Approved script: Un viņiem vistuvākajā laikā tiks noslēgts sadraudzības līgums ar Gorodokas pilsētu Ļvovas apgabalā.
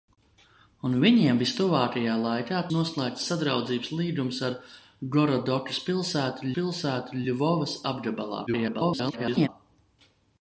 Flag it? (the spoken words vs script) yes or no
yes